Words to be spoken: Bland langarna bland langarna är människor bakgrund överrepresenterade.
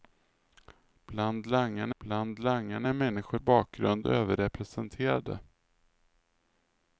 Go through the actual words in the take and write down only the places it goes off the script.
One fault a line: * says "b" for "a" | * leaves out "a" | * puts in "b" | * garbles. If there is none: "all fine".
all fine